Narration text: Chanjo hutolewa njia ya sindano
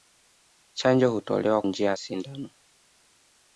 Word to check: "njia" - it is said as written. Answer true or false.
true